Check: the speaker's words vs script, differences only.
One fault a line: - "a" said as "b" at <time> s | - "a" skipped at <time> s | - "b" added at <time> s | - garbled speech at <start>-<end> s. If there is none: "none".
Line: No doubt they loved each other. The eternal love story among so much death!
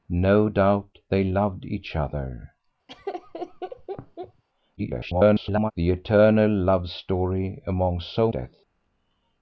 - garbled speech at 4.8-5.7 s
- "much" skipped at 8.3 s